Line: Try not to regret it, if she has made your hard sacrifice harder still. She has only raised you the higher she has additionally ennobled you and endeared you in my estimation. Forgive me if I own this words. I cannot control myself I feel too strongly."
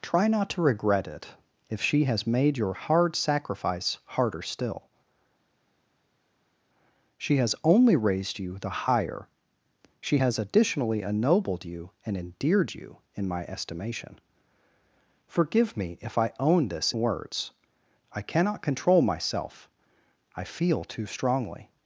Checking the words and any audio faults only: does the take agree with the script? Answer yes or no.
yes